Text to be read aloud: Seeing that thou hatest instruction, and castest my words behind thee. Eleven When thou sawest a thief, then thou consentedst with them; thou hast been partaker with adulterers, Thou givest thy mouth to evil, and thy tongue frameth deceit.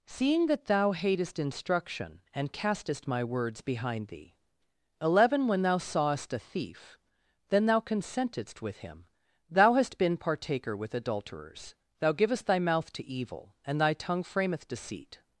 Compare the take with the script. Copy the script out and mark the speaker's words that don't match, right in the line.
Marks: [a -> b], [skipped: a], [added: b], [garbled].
Seeing that thou hatest instruction, and castest my words behind thee. Eleven When thou sawest a thief, then thou consentedst with [them; -> him] thou hast been partaker with adulterers, Thou givest thy mouth to evil, and thy tongue frameth deceit.